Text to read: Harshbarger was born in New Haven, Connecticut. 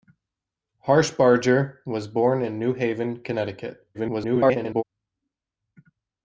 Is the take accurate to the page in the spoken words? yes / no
no